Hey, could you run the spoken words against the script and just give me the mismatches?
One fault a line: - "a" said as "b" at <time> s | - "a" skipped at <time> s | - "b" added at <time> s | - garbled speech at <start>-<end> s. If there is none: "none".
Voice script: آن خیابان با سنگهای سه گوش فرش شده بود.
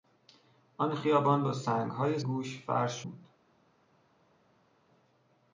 - "سه" skipped at 2.2 s
- "شده" skipped at 3.0 s